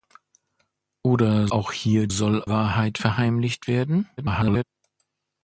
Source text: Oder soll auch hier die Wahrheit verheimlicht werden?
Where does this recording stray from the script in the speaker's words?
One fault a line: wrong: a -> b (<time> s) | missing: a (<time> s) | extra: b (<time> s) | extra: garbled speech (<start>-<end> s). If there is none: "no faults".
missing: soll (1.5 s)
wrong: die -> soll (2.1 s)
extra: garbled speech (4.2-4.6 s)